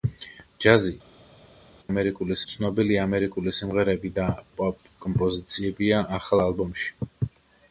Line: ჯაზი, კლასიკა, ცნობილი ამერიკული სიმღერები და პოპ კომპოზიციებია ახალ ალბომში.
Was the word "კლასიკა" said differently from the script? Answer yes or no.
yes